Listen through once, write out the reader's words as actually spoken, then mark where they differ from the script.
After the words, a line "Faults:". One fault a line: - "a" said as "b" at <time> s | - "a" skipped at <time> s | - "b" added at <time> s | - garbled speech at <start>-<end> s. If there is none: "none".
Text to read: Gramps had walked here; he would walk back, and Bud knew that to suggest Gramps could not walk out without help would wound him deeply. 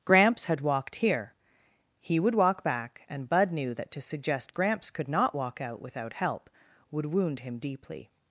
Gramps had walked here; he would walk back, and Bud knew that to suggest Gramps could not walk out without help would wound him deeply.
Faults:
none